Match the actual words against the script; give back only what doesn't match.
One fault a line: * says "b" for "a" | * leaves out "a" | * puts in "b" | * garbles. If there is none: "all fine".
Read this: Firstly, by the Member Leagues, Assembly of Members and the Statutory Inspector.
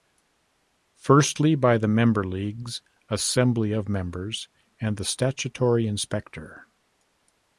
all fine